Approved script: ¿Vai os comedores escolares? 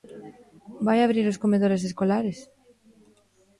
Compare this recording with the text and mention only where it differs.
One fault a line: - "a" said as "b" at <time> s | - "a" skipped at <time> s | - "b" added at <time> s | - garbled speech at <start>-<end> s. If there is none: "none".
- "abrir" added at 1.0 s